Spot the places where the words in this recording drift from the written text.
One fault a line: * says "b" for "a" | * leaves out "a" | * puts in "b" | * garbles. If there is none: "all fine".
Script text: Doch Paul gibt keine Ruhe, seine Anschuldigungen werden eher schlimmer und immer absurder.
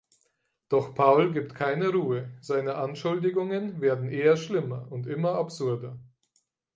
all fine